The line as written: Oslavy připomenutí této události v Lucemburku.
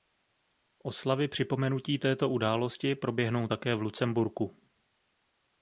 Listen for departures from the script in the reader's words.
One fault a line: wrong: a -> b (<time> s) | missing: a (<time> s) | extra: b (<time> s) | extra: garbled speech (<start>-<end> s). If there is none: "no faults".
extra: proběhnou také (3.0 s)